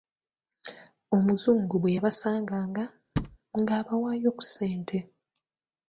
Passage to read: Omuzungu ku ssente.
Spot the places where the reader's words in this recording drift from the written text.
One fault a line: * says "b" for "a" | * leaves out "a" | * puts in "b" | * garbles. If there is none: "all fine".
* puts in "bwe yabasanganga ng'abawaayo"